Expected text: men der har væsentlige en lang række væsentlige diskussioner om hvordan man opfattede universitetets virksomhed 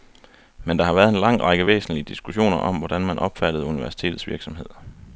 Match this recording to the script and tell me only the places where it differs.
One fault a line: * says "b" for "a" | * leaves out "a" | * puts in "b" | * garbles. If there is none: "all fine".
* says "været" for "væsentlige"